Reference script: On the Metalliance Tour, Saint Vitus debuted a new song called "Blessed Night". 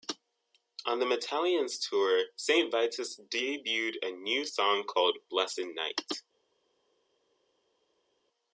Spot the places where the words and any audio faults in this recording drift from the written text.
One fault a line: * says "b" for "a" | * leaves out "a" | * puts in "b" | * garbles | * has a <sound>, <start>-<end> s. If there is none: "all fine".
all fine